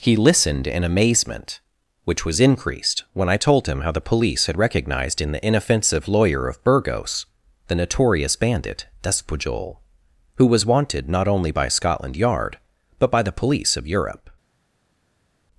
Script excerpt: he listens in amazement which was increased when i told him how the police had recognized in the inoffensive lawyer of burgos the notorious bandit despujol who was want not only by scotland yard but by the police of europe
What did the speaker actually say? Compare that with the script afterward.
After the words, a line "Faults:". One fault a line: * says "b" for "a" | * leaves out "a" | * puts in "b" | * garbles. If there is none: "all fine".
he listened in amazement which was increased when i told him how the police had recognized in the inoffensive lawyer of burgos the notorious bandit despujol who was wanted not only by scotland yard but by the police of europe
Faults:
* says "listened" for "listens"
* says "wanted" for "want"